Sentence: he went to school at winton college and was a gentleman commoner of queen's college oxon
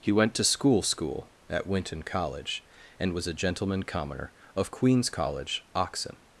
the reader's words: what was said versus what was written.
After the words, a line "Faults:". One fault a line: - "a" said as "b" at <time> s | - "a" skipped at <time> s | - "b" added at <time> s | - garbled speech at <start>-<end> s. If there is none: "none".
he went to school school at winton college and was a gentleman commoner of queen's college oxon
Faults:
- "school" added at 0.8 s